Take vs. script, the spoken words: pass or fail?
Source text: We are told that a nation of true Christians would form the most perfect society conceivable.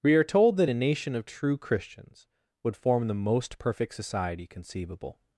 pass